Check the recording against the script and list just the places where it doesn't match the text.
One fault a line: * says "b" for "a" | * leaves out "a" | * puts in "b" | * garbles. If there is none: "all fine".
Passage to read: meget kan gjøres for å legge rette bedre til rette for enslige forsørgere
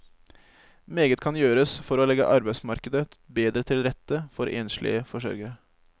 * says "arbeidsmarkedet" for "rette"